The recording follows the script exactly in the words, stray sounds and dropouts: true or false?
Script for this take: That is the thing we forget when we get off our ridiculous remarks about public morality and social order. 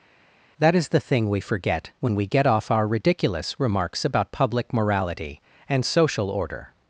true